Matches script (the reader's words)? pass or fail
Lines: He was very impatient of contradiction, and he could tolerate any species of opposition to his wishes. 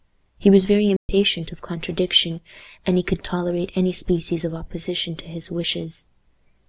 pass